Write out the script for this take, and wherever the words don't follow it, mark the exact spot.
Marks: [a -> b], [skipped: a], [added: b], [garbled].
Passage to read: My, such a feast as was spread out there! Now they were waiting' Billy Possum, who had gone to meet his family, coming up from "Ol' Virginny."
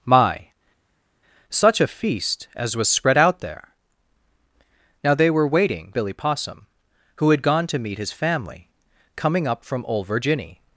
My, such a feast as was spread out there! Now they were waiting' Billy Possum, who had gone to meet his family, coming up from "Ol' Virginny."